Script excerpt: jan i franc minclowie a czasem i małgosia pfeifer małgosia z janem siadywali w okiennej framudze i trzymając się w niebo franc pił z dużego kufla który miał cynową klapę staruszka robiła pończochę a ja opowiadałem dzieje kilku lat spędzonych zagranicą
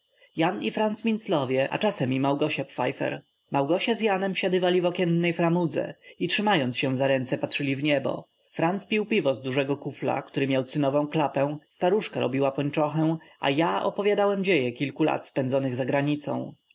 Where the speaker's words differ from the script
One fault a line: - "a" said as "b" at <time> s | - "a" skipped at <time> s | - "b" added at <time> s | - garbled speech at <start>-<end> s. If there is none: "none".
- "za ręce patrzyli" added at 7.0 s
- "piwo" added at 9.1 s